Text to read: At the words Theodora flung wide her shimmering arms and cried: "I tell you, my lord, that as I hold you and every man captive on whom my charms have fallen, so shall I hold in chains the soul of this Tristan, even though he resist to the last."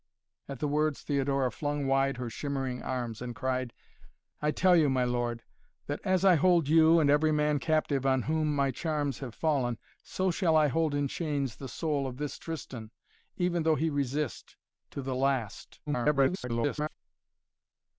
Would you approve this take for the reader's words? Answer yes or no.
no